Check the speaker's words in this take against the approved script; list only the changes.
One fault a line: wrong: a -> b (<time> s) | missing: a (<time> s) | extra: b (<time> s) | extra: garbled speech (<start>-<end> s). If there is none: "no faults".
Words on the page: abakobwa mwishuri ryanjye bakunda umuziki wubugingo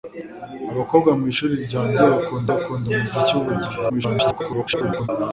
extra: bakunda (2.5 s)
extra: garbled speech (3.9-5.1 s)